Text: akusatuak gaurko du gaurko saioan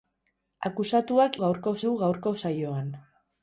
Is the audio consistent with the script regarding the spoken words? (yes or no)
yes